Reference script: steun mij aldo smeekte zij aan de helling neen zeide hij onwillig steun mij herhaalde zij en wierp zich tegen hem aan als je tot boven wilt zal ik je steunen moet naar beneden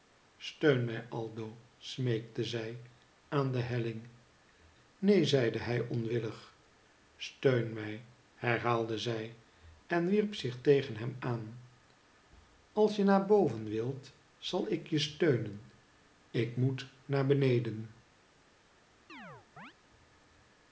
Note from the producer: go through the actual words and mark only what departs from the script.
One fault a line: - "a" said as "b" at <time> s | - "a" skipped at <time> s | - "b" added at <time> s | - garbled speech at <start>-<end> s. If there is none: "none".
- "tot" said as "naar" at 13.0 s
- "ik" added at 16.3 s